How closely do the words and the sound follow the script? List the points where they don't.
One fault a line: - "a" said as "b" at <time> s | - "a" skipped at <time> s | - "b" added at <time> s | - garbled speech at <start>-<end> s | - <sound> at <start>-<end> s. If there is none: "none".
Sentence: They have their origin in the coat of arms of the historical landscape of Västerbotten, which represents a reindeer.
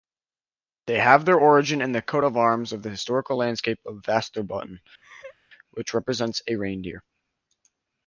- laugh at 5.0-5.4 s